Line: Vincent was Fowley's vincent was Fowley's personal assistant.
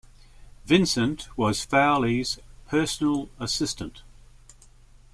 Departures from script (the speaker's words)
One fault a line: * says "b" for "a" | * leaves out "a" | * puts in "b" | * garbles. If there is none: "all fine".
* leaves out "vincent was Fowley's"